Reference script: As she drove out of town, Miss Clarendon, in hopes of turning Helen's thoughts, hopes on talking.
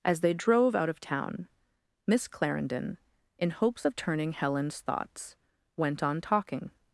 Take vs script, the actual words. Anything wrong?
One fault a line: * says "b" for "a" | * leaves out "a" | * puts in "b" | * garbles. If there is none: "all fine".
* says "they" for "she"
* says "went" for "hopes"